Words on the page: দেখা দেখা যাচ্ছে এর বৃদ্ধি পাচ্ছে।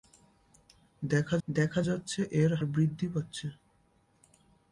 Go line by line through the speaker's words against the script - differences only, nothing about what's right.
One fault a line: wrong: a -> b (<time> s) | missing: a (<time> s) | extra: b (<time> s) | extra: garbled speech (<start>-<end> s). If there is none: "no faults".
no faults